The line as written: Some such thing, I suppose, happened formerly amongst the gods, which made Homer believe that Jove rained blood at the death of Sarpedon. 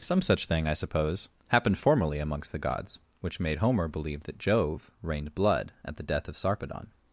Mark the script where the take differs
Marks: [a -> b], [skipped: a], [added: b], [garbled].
Some such thing, I suppose, happened formerly amongst the gods, which made Homer believe that Jove rained blood at the death of Sarpedon.